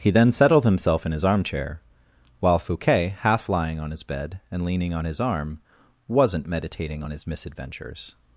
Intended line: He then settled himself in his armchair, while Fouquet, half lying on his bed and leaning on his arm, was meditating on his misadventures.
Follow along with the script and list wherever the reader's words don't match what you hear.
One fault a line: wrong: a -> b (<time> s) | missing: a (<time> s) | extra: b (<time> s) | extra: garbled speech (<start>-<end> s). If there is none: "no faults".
wrong: was -> wasn't (6.1 s)